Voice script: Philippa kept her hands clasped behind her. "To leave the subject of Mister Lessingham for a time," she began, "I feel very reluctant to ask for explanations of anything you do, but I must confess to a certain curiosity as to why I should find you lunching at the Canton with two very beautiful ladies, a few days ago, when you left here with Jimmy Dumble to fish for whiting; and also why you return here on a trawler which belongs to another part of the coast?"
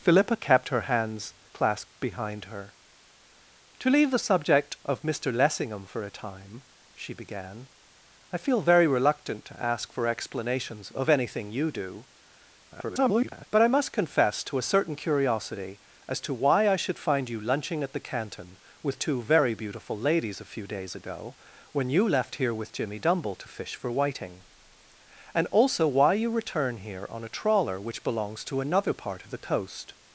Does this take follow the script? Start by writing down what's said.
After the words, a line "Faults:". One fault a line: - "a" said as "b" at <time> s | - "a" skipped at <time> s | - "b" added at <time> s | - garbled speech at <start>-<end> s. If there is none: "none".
Philippa kept her hands clasped behind her. "To leave the subject of Mister Lessingham for a time," she began, "I feel very reluctant to ask for explanations of anything you do, [garbled] but I must confess to a certain curiosity as to why I should find you lunching at the Canton with two very beautiful ladies, a few days ago, when you left here with Jimmy Dumble to fish for whiting; and also why you return here on a trawler which belongs to another part of the coast?"
Faults:
- garbled speech at 12.7-13.5 s